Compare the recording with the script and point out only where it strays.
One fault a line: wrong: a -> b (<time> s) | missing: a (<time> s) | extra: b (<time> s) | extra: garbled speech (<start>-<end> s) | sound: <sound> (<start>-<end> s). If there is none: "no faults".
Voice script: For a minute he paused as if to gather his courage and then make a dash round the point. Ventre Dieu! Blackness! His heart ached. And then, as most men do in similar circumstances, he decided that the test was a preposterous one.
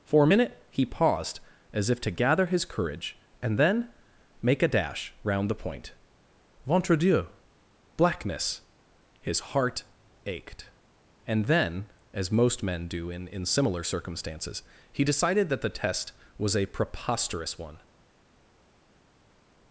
extra: in (13.3 s)